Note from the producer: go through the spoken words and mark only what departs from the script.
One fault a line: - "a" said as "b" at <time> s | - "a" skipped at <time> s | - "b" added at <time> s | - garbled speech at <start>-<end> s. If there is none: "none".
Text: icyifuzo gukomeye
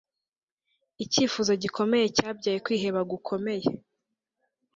- "gikomeye cyabyaye kwiheba" added at 1.6 s